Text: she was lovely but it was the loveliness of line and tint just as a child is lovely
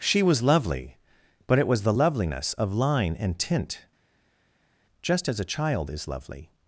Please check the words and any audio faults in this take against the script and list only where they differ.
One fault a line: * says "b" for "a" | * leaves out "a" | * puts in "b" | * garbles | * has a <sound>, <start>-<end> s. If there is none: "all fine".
all fine